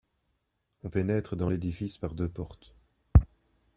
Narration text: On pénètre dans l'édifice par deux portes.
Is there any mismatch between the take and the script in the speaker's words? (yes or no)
no